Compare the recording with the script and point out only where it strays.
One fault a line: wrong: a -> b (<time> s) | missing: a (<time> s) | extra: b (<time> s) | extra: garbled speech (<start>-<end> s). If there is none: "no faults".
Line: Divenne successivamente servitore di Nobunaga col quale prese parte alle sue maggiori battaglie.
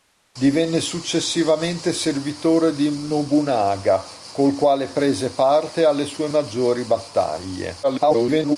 extra: garbled speech (7.8-8.6 s)